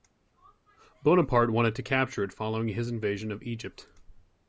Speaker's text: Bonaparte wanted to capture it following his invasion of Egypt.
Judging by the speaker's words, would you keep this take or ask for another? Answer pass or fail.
pass